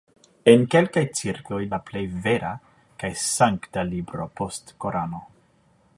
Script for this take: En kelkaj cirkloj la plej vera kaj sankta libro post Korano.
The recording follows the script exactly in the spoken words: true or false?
true